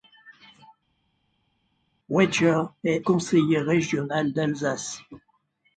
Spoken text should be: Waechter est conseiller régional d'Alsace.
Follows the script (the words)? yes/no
yes